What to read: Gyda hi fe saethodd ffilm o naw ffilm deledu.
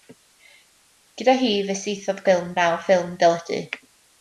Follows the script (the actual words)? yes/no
yes